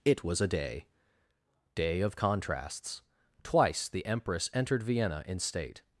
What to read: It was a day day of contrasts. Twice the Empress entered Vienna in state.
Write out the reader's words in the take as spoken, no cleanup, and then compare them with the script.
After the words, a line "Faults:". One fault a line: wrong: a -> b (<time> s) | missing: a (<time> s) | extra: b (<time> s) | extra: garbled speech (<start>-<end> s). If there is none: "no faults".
It was a day day of contrasts. Twice the Empress entered Vienna in state.
Faults:
no faults